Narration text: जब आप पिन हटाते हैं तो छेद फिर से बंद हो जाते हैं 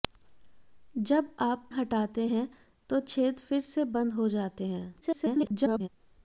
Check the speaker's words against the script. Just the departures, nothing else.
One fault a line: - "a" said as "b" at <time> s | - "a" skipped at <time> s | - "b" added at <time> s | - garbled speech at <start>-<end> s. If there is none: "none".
- "पिन" skipped at 1.7 s
- garbled speech at 5.0-5.9 s